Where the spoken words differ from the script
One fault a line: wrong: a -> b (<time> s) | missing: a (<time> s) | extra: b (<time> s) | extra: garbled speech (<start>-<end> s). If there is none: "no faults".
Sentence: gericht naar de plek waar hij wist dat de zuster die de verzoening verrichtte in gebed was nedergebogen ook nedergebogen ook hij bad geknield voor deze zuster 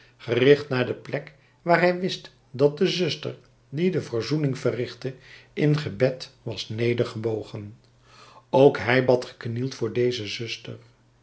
missing: nedergebogen ook (8.8 s)